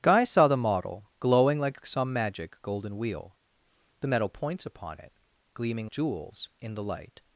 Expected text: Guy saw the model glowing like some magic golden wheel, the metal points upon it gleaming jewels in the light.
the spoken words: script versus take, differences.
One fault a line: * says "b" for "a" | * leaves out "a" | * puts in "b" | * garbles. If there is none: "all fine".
all fine